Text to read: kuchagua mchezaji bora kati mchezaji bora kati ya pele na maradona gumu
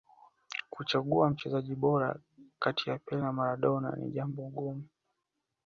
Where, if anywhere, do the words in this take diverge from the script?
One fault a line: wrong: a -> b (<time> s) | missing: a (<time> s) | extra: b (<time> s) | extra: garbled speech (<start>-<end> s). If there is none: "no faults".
missing: mchezaji bora kati (2.9 s)
extra: ni jambo (4.0 s)